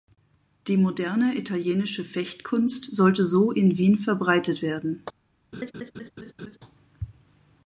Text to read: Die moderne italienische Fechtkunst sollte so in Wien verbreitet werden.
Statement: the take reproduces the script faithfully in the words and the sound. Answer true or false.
false